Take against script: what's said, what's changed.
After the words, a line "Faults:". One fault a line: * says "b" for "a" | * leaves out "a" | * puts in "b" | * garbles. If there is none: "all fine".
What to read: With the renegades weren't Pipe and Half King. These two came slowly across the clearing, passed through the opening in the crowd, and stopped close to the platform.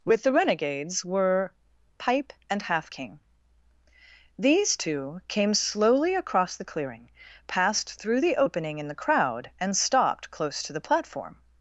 With the renegades were Pipe and Half King. These two came slowly across the clearing, passed through the opening in the crowd, and stopped close to the platform.
Faults:
* says "were" for "weren't"